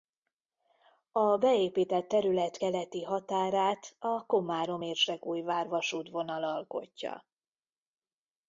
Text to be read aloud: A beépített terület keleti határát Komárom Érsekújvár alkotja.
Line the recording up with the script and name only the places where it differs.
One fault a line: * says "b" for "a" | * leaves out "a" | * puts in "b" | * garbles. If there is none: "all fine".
* puts in "a"
* puts in "vasútvonal"